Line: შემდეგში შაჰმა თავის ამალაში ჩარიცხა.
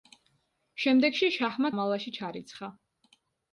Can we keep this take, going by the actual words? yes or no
no